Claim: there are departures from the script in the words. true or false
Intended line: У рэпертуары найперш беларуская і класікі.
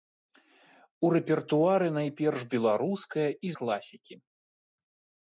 false